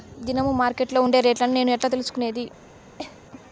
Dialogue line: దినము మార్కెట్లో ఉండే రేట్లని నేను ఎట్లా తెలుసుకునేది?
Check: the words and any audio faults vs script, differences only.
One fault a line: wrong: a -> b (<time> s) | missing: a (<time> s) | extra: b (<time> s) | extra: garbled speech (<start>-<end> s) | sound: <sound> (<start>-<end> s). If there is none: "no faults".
sound: cough (3.0-3.2 s)